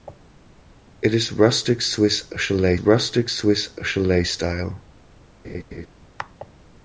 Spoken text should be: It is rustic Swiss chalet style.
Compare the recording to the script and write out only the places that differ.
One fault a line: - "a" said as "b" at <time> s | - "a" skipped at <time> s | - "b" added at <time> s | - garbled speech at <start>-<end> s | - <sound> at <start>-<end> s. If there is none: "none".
- "rustic Swiss chalet" added at 2.8 s
- laugh at 5.4-5.9 s